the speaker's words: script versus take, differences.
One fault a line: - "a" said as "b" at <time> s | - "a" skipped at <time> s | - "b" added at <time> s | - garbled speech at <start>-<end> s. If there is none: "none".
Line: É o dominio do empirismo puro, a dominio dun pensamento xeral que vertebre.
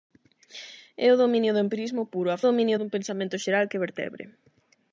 none